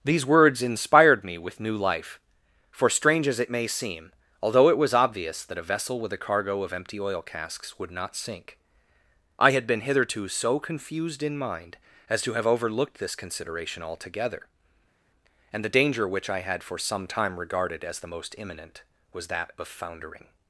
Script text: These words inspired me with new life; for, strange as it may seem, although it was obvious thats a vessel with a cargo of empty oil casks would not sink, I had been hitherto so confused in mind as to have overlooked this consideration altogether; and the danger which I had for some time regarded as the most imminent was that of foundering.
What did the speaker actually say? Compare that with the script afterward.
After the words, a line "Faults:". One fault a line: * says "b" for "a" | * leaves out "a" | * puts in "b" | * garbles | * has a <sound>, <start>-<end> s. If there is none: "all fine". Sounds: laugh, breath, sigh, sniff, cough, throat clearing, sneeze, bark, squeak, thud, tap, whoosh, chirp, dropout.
These words inspired me with new life; for, strange as it may seem, although it was obvious that a vessel with a cargo of empty oil casks would not sink, I had been hitherto so confused in mind as to have overlooked this consideration altogether; and the danger which I had for some time regarded as the most imminent was that of foundering.
Faults:
* says "that" for "thats"